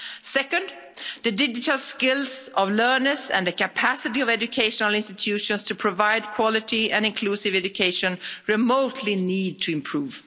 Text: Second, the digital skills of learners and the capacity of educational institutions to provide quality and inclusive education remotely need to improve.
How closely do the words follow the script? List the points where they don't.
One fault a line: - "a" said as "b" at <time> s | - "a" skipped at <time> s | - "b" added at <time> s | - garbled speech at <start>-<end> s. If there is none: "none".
none